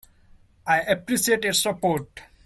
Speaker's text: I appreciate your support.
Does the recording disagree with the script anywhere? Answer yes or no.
no